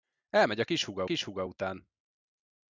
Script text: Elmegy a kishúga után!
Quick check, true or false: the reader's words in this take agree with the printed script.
false